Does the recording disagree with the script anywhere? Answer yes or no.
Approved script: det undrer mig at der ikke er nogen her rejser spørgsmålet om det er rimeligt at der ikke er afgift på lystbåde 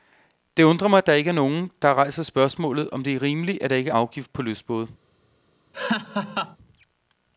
yes